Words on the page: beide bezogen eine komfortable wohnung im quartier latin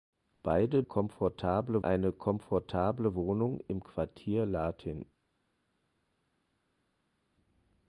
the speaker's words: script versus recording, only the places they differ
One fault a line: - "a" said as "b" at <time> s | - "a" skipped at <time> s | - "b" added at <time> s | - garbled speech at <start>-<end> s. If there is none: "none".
- "bezogen" said as "komfortable" at 0.8 s